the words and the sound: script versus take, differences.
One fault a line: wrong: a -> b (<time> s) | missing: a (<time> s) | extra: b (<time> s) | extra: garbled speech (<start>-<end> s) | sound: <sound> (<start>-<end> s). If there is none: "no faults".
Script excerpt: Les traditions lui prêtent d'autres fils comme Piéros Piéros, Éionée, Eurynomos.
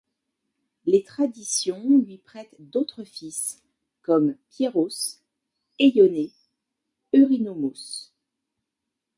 missing: Piéros (5.2 s)